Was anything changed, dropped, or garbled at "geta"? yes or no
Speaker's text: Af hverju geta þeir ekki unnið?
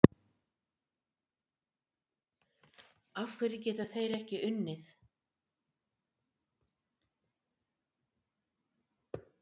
no